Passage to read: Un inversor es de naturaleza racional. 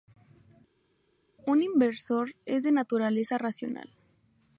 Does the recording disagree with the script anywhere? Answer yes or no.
no